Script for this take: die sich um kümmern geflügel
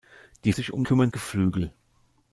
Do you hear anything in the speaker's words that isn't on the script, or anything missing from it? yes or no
no